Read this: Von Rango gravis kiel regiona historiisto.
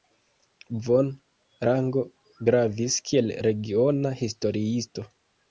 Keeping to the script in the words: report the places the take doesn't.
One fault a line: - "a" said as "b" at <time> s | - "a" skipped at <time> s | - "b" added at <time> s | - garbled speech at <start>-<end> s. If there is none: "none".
none